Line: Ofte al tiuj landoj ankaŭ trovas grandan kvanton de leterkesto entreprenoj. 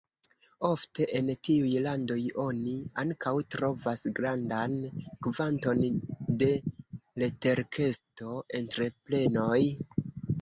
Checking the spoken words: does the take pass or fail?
fail